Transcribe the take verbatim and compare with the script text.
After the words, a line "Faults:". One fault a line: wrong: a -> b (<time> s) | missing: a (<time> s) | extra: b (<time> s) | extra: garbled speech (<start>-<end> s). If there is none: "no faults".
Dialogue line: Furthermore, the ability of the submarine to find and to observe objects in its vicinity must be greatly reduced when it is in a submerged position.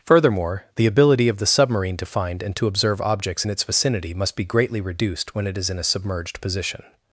Furthermore, the ability of the submarine to find and to observe objects in its vicinity must be greatly reduced when it is in a submerged position.
Faults:
no faults